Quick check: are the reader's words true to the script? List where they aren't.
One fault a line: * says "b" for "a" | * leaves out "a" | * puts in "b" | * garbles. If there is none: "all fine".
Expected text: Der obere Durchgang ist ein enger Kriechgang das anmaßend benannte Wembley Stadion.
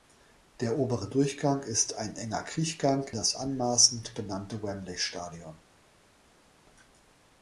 all fine